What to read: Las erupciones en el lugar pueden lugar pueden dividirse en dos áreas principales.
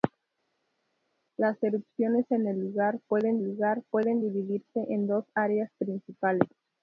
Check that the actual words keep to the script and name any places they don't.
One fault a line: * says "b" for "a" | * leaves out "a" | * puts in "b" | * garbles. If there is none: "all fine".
all fine